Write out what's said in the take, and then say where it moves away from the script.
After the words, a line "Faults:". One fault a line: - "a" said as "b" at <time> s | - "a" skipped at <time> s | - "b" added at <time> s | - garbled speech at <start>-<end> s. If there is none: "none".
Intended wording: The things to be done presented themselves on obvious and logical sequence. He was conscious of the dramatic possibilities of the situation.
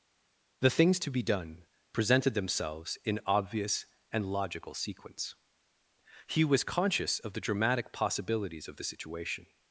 The things to be done presented themselves in obvious and logical sequence. He was conscious of the dramatic possibilities of the situation.
Faults:
- "on" said as "in" at 3.0 s